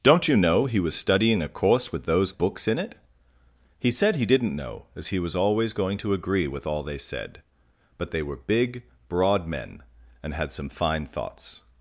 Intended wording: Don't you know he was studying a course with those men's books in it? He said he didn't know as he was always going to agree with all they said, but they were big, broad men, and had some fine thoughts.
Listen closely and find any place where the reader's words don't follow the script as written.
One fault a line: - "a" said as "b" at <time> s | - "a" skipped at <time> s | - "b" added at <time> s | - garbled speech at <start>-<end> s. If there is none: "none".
- "men's" skipped at 2.4 s